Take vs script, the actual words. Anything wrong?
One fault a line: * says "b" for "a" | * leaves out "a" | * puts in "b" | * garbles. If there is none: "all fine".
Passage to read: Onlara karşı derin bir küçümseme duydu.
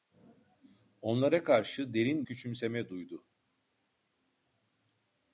* leaves out "bir"